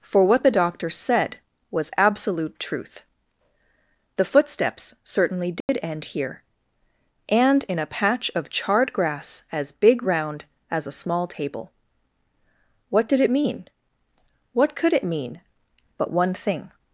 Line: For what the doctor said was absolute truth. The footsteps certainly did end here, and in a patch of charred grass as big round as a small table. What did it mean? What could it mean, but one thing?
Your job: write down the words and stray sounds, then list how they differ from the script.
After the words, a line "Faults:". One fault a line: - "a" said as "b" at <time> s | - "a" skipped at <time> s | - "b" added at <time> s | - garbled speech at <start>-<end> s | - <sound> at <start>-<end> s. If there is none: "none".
For what the doctor said was absolute truth. The footsteps certainly did end here, and in a patch of charred grass as big round as a small table. What did it mean? What could it mean, but one thing?
Faults:
- dropout at 5.6-5.7 s